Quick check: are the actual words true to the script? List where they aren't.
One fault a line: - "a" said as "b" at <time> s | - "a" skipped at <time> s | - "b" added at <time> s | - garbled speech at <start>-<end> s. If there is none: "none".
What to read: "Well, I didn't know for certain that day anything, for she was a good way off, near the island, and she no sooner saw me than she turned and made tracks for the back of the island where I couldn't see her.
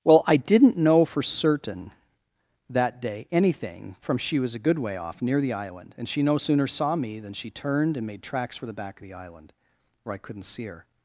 - "for" said as "from" at 4.0 s